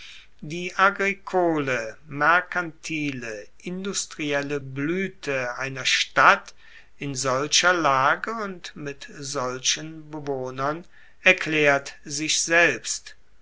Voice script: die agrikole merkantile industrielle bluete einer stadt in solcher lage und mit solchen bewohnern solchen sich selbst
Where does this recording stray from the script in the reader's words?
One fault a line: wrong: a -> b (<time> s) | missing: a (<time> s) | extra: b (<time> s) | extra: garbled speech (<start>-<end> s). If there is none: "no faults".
wrong: solchen -> erklaert (11.2 s)